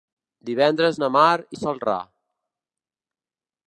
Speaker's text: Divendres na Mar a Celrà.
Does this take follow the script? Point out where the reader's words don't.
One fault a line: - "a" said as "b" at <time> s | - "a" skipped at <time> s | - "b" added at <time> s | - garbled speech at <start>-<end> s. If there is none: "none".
none